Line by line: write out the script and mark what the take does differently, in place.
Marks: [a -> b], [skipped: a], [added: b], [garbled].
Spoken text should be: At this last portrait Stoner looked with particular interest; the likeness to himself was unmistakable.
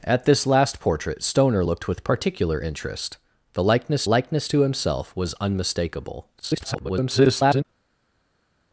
At this last portrait Stoner looked with particular interest; the likeness [added: likeness] to himself was unmistakable. [garbled]